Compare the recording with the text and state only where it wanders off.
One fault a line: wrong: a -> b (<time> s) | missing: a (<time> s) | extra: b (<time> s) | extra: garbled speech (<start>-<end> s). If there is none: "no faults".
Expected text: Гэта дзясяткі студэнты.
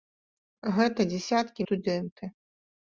no faults